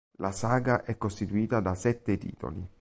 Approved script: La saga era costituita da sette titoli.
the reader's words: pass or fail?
fail